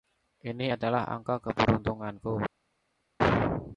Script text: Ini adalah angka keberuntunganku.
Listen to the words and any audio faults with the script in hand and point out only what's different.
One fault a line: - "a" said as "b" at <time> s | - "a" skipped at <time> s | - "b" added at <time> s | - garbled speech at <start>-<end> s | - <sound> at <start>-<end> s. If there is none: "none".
none